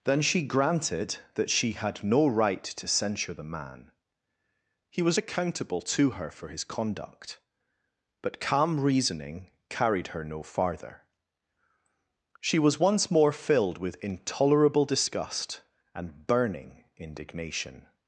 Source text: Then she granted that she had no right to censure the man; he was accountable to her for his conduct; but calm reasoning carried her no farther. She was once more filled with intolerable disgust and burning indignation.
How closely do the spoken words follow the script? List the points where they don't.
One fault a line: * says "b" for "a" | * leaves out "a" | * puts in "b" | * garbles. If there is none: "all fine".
all fine